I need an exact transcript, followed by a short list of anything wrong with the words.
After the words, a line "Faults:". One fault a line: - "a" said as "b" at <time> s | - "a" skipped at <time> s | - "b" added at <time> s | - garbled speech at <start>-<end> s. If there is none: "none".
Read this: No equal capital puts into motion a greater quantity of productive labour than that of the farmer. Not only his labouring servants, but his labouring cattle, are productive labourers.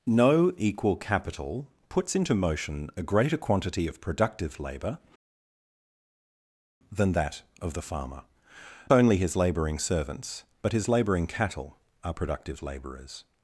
No equal capital puts into motion a greater quantity of productive labour than that of the farmer. Only his labouring servants, but his labouring cattle, are productive labourers.
Faults:
- "Not" skipped at 8.2 s